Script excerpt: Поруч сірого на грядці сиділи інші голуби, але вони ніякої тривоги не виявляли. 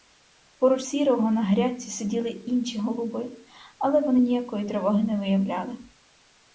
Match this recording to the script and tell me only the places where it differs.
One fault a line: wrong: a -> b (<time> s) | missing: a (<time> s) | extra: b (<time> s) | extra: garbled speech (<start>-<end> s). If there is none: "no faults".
no faults